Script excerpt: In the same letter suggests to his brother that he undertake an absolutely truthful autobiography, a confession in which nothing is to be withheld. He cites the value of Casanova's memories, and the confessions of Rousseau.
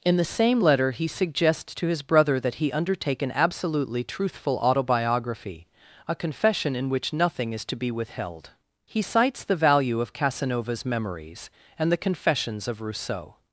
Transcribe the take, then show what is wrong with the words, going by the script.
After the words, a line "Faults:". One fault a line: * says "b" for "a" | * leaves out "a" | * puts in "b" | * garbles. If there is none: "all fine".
In the same letter he suggests to his brother that he undertake an absolutely truthful autobiography, a confession in which nothing is to be withheld. He cites the value of Casanova's memories, and the confessions of Rousseau.
Faults:
* puts in "he"